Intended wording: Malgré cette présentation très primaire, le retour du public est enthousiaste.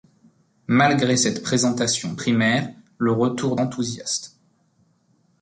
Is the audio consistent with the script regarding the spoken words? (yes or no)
no